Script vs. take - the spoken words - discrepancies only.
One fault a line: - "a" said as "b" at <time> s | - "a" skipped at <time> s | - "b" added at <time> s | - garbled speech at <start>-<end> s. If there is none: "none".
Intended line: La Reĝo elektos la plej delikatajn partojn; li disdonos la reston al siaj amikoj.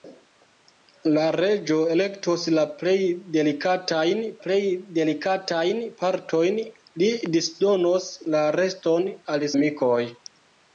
- "plej delikatajn" added at 4.4 s
- "siaj" skipped at 9.5 s